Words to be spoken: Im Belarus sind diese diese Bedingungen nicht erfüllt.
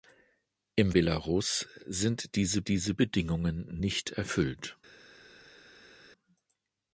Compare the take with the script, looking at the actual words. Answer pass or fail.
pass